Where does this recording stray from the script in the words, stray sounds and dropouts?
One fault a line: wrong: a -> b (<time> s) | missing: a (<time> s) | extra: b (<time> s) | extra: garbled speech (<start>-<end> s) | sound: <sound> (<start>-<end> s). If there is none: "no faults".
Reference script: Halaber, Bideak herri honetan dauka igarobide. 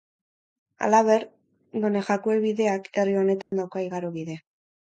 extra: Donejakue (1.9 s)
sound: dropout (3.4-3.5 s)